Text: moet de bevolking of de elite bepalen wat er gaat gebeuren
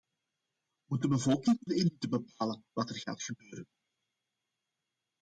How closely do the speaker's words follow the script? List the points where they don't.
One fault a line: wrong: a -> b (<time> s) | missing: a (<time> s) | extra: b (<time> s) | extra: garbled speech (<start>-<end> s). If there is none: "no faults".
missing: of (1.6 s)